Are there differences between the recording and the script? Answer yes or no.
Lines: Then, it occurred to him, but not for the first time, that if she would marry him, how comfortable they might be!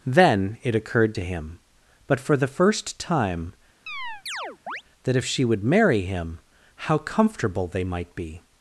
yes